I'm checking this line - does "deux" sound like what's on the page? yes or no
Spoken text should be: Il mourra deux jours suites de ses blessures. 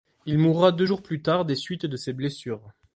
yes